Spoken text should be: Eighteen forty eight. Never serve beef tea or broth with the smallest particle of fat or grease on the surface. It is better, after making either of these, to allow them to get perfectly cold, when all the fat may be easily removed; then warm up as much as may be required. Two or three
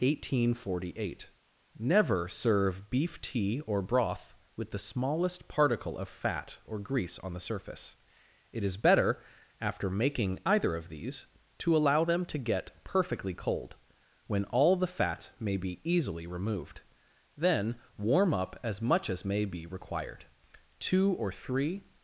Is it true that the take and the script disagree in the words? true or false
false